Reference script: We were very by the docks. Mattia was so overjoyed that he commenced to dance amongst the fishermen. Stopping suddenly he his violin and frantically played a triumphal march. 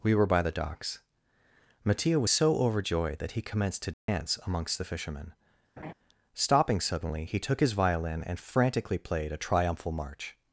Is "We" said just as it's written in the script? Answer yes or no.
yes